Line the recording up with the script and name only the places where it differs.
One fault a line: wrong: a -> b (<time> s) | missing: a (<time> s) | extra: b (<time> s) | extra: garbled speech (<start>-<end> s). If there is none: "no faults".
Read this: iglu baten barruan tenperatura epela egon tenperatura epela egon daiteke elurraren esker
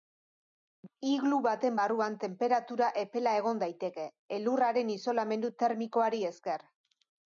wrong: tenperatura epela egon daiteke elurraren -> daiteke elurraren isolamendu termikoari (3.6 s)